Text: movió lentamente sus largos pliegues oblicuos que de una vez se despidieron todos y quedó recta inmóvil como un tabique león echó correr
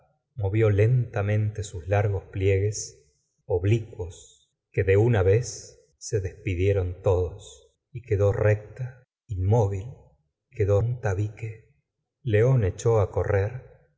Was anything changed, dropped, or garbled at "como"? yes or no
yes